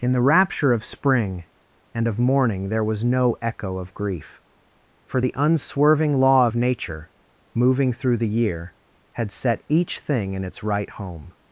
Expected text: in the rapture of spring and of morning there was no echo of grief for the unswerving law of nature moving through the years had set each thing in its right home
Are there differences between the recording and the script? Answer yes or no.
yes